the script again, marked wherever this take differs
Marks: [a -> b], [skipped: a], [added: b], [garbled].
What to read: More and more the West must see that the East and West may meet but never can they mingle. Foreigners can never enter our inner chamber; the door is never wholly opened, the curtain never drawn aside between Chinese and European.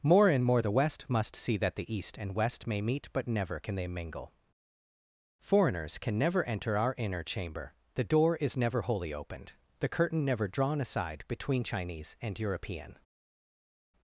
More and more the West must see that the East and West may meet but never can they mingle. Foreigners can never enter our inner chamber; the door is never wholly opened, the curtain never drawn aside between Chinese and European.